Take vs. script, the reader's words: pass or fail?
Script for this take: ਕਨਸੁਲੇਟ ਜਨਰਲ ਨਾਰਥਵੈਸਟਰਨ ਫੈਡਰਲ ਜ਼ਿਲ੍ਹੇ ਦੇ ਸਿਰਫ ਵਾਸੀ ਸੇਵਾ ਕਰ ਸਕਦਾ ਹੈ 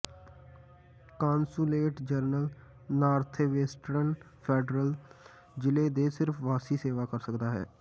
pass